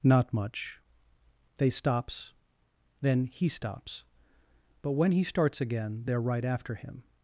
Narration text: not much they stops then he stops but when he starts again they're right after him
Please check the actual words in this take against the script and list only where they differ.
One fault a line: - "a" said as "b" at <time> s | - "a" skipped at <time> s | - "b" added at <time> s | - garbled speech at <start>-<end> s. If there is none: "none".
none